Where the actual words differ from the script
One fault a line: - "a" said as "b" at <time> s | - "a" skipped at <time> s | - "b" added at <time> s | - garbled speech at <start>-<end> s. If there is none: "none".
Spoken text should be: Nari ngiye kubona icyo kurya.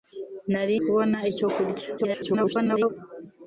- "ngiye" skipped at 0.8 s
- garbled speech at 2.0-2.9 s